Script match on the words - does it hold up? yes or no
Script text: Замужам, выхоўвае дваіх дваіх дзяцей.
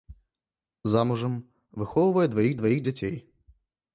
yes